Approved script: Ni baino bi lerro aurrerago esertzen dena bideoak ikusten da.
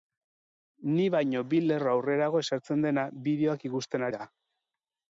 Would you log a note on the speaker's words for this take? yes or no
no